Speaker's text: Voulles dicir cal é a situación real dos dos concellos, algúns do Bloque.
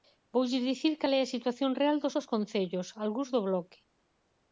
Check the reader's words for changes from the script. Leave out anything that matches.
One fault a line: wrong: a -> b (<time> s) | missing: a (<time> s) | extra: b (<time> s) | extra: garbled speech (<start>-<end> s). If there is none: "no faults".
no faults